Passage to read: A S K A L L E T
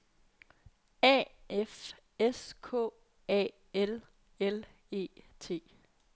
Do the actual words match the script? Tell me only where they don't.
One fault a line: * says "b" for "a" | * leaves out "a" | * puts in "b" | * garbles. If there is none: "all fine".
* puts in "F"